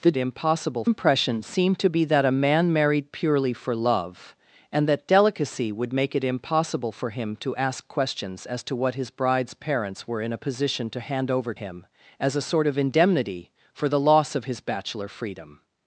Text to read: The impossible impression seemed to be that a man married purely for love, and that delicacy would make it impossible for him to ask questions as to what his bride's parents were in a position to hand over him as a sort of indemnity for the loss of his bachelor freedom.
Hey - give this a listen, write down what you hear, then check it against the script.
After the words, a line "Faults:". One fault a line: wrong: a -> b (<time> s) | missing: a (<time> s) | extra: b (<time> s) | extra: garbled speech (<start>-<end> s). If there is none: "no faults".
The impossible impression seemed to be that a man married purely for love, and that delicacy would make it impossible for him to ask questions as to what his bride's parents were in a position to hand over him as a sort of indemnity for the loss of his bachelor freedom.
Faults:
no faults